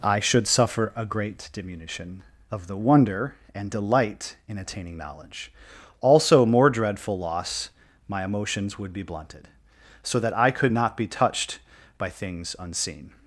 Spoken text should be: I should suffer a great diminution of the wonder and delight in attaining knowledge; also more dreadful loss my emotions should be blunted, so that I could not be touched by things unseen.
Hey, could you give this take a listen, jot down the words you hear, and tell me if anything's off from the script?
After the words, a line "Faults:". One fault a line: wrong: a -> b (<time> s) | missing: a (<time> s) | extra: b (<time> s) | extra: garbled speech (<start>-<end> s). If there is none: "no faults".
I should suffer a great diminution of the wonder and delight in attaining knowledge; also more dreadful loss my emotions would be blunted, so that I could not be touched by things unseen.
Faults:
wrong: should -> would (8.8 s)